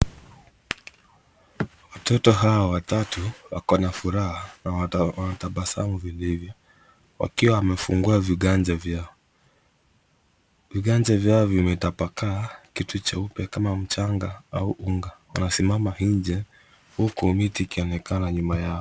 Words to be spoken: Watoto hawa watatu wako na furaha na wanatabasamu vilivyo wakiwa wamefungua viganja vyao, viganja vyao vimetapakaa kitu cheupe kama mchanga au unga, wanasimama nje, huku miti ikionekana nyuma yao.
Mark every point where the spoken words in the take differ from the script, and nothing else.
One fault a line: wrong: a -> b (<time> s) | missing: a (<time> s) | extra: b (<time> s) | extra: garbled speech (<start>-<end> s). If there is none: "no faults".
no faults